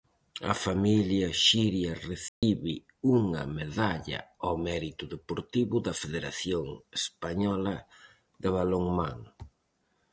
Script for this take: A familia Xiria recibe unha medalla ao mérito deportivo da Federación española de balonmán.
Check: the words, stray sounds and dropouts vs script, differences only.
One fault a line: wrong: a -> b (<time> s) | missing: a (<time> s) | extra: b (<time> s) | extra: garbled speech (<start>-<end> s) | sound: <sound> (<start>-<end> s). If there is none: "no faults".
sound: dropout (2.3-2.4 s)